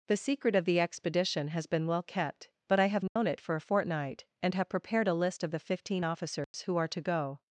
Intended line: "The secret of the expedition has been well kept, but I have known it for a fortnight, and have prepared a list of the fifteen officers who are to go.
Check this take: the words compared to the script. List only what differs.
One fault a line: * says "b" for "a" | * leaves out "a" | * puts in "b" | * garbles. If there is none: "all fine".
all fine